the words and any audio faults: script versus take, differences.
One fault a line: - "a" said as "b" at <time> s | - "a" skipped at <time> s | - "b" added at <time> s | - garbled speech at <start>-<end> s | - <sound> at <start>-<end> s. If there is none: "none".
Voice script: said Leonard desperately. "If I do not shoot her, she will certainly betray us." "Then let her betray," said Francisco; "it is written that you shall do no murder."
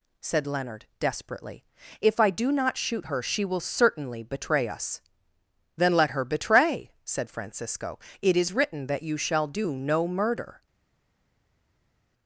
none